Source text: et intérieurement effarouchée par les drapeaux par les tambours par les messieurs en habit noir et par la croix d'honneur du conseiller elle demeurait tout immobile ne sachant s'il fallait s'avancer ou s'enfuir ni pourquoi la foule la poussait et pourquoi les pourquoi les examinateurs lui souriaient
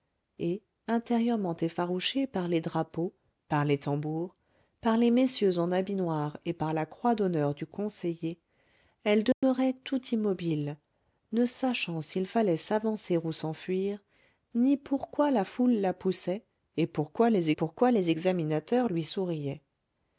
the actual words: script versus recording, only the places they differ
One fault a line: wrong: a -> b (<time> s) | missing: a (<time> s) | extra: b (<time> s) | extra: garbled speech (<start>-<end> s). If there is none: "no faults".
no faults